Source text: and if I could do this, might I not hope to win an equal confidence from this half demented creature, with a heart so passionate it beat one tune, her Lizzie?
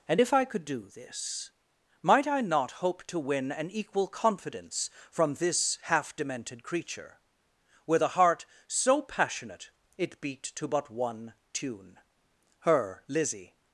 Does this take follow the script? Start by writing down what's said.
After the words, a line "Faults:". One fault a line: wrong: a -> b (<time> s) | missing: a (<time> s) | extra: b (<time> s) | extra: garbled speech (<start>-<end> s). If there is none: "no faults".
and if I could do this, might I not hope to win an equal confidence from this half demented creature, with a heart so passionate it beat to but one tune, her Lizzie?
Faults:
extra: to but (10.4 s)